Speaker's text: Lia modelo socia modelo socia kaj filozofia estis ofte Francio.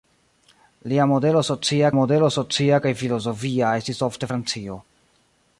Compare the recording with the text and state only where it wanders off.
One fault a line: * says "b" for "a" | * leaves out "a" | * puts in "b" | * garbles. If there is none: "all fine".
all fine